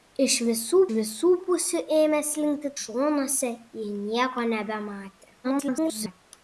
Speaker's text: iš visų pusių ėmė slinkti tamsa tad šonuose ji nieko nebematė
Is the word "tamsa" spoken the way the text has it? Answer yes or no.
no